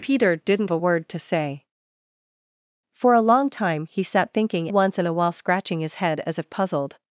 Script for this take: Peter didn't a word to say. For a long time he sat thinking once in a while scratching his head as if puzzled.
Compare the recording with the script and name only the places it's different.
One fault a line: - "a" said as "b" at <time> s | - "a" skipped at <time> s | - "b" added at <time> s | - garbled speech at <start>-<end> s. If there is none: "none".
none